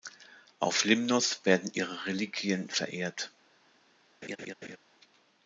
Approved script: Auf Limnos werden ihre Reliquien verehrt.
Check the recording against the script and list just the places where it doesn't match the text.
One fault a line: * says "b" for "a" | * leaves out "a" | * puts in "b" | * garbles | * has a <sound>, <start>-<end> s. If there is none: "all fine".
* has a laugh, 4.2-4.8 s